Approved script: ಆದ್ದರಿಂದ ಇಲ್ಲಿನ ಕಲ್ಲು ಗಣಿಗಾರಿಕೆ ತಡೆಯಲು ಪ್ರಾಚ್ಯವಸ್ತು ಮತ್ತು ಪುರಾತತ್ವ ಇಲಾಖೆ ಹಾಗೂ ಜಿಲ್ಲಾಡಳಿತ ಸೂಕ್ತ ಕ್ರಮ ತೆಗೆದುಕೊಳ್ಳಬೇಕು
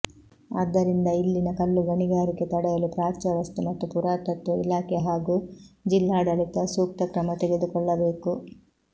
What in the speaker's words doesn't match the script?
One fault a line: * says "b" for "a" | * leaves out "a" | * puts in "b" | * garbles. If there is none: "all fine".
all fine